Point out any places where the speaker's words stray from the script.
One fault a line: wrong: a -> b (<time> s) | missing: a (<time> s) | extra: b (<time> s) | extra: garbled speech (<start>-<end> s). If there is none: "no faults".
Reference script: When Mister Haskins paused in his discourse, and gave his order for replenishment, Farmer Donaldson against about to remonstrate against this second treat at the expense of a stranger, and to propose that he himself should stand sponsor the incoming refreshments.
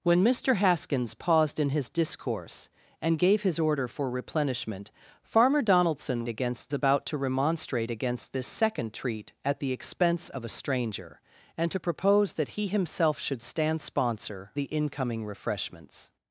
no faults